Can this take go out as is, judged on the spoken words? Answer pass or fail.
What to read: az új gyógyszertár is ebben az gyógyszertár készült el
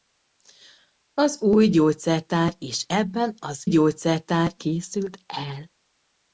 pass